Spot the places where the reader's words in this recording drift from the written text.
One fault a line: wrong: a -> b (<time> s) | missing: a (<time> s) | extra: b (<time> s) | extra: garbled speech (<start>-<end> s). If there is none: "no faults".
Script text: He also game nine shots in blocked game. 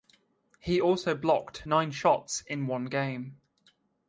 wrong: game -> blocked (1.1 s)
wrong: blocked -> one (2.7 s)